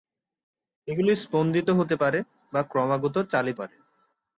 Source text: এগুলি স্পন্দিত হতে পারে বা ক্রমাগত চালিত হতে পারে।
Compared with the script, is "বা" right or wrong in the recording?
right